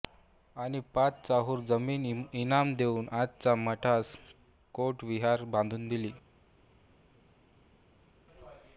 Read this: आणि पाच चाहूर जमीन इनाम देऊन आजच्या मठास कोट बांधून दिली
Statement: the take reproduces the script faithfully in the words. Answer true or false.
false